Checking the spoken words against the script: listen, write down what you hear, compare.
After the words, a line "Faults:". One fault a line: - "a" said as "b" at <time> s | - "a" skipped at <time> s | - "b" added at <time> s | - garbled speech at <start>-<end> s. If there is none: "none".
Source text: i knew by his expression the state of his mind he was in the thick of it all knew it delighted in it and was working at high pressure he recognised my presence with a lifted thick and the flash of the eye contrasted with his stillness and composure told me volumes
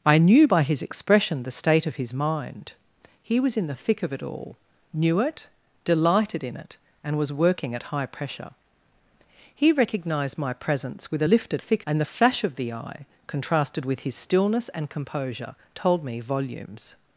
i knew by his expression the state of his mind he was in the thick of it all knew it delighted in it and was working at high pressure he recognised my presence with a lifted thick and the flash of the eye contrasted with his stillness and composure told me volumes
Faults:
none